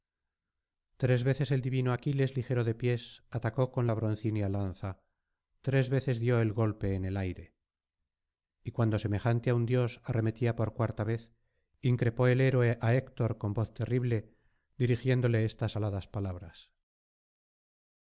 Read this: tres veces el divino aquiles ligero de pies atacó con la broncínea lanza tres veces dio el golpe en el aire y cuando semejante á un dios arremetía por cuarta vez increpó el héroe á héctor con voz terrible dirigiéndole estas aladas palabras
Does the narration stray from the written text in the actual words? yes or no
no